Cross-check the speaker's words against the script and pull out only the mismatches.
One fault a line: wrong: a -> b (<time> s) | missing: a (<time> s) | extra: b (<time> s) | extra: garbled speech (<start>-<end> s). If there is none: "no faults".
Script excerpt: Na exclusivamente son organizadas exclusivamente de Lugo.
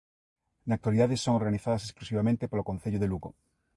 wrong: exclusivamente -> actualidade (0.8 s)
extra: polo Concello (2.5 s)